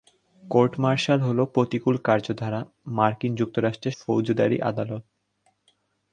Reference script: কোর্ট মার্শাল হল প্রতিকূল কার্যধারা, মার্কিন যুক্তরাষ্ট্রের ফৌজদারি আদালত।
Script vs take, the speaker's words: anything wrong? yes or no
no